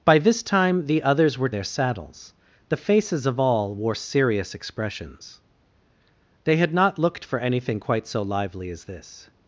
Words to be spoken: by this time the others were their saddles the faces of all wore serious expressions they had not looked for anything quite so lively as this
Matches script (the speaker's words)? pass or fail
pass